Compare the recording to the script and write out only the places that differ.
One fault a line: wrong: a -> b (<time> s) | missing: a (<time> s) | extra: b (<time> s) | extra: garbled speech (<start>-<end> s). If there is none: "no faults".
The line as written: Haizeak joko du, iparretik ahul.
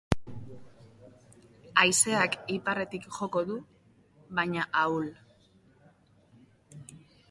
extra: iparretik (2.5 s)
wrong: iparretik -> baina (4.4 s)